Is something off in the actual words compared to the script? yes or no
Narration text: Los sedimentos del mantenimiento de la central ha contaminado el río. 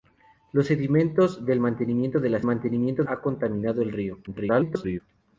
yes